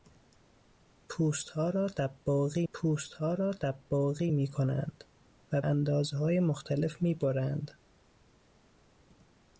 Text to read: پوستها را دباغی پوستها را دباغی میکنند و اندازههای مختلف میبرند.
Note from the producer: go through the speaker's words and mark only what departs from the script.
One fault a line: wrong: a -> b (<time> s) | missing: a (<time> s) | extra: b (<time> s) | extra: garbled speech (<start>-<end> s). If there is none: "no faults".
no faults